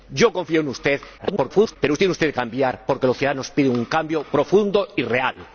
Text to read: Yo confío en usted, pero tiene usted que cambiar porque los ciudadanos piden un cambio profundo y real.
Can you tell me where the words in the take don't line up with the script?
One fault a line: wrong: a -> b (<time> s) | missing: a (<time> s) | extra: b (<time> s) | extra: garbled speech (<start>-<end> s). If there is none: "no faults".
extra: garbled speech (1.2-1.8 s)
missing: que (2.3 s)